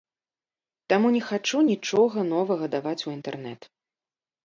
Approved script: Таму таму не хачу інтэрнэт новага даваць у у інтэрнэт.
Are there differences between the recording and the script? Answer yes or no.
yes